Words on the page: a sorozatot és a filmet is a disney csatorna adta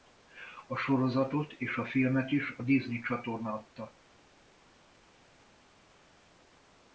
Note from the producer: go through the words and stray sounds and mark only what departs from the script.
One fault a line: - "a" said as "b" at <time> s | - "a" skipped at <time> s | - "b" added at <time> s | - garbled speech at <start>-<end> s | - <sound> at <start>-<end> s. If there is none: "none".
none